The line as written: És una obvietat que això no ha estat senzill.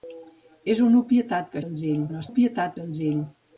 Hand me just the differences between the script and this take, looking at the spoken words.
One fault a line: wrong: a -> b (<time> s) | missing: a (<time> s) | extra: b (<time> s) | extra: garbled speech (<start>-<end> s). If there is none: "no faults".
wrong: això -> senzill (1.6 s)
wrong: estat -> obvietat (2.3 s)